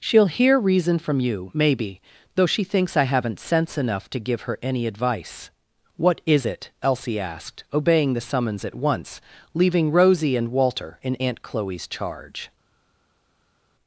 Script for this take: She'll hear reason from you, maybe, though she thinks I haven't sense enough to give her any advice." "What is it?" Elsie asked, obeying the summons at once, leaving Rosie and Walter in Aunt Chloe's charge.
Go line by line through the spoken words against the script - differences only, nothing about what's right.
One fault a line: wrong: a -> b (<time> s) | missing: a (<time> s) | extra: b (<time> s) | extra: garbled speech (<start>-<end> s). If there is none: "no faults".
no faults